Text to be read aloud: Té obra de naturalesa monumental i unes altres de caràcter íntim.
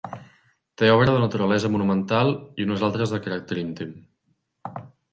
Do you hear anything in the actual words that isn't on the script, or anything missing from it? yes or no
no